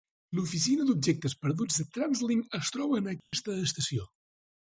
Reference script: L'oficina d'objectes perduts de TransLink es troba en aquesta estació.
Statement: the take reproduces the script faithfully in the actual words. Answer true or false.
true